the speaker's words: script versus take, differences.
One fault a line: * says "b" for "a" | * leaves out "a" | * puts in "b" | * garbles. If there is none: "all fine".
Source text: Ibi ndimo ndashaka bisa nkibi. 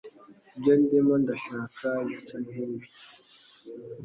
* says "Ibyo" for "Ibi"